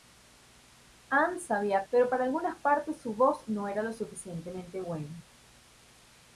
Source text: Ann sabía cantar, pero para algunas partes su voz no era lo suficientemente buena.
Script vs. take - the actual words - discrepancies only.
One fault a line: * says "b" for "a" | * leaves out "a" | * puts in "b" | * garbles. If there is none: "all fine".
* leaves out "cantar"